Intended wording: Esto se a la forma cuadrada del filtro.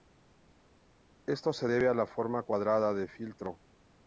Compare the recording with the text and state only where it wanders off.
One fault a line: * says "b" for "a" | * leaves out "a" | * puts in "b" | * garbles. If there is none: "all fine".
* puts in "debe"